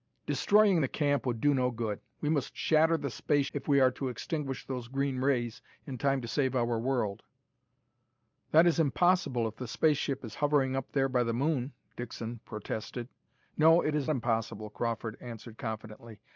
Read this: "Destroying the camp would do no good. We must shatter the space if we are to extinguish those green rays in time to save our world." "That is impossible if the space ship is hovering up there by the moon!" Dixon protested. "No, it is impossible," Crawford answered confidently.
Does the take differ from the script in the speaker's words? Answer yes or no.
no